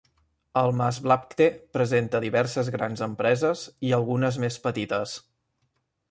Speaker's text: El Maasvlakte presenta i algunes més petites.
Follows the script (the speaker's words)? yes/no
no